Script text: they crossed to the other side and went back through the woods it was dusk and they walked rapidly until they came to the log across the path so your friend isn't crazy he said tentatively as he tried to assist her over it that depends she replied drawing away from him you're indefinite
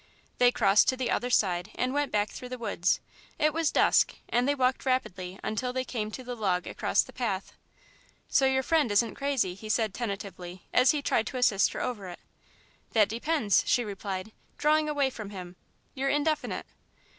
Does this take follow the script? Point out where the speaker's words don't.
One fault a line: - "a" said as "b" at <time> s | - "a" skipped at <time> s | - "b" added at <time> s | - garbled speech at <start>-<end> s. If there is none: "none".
none